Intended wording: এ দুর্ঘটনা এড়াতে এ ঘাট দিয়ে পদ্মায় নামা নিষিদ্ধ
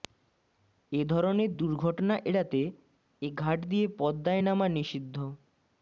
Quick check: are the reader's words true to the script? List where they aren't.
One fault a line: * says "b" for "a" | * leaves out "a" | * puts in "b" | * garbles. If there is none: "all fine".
* puts in "ধরনের"